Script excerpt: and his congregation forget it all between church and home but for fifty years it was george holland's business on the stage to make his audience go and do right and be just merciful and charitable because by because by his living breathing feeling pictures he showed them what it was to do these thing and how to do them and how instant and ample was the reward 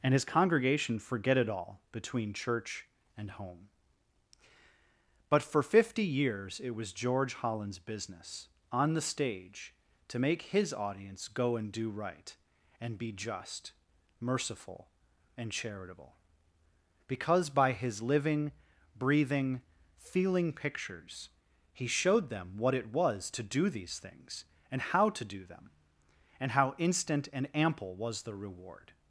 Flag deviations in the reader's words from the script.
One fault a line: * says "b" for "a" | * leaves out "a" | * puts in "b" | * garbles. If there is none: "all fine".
* leaves out "because by"
* says "things" for "thing"